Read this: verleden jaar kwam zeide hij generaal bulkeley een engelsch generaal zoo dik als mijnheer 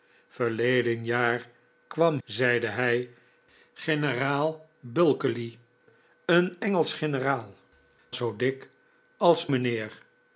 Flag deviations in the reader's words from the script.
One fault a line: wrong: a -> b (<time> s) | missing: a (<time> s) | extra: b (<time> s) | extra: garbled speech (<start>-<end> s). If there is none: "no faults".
no faults